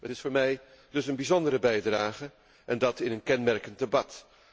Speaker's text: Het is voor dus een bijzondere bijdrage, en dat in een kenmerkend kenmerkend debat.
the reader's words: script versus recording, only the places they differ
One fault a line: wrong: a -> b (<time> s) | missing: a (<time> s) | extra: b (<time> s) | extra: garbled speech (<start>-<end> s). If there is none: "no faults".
extra: mij (0.3 s)
missing: kenmerkend (3.8 s)